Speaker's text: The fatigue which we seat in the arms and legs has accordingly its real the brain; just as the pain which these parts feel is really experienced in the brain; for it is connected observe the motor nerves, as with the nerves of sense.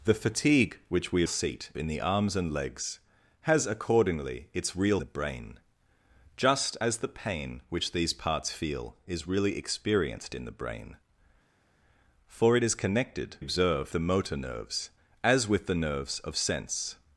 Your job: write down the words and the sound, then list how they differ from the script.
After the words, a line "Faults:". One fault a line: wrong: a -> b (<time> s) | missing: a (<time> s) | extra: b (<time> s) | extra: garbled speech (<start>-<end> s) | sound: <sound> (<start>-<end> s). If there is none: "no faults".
The fatigue which we seat in the arms and legs has accordingly its real the brain; just as the pain which these parts feel is really experienced in the brain; for it is connected observe the motor nerves, as with the nerves of sense.
Faults:
no faults